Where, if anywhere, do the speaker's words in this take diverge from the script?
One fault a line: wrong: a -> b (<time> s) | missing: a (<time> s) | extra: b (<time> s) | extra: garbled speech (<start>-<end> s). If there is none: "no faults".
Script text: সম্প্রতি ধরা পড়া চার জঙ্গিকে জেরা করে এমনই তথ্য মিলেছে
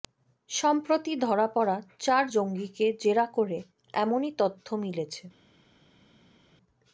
no faults